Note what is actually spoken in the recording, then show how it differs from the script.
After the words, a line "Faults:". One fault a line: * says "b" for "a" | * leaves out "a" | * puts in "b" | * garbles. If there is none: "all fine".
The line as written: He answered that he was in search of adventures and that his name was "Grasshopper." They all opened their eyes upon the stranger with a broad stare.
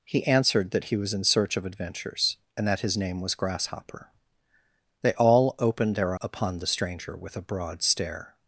He answered that he was in search of adventures and that his name was "Grasshopper." They all opened their upon the stranger with a broad stare.
Faults:
* leaves out "eyes"